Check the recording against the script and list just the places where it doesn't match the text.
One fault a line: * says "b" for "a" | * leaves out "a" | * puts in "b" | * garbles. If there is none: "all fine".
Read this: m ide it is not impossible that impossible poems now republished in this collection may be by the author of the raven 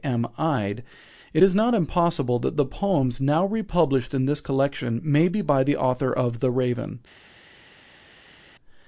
* says "the" for "impossible"